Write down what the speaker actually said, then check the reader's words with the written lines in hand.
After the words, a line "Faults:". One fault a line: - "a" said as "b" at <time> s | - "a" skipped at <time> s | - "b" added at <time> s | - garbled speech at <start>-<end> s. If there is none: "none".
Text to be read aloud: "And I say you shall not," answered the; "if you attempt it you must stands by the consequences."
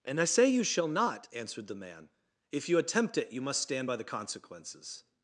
"And I say you shall not," answered the man; "if you attempt it you must stand by the consequences."
Faults:
- "man" added at 1.8 s
- "stands" said as "stand" at 3.6 s